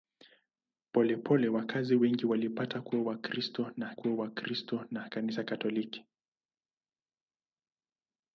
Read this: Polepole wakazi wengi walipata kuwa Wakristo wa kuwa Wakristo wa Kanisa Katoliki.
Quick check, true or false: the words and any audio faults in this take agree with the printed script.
true